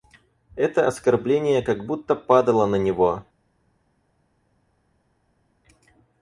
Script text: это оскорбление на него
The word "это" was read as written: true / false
true